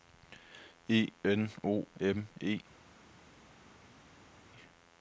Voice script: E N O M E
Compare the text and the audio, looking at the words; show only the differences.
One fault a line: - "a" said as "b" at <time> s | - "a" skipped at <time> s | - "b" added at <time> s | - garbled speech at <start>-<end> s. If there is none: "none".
none